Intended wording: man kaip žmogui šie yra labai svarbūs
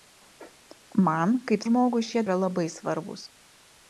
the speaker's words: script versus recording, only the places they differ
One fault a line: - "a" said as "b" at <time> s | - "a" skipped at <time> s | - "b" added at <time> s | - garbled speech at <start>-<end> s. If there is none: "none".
none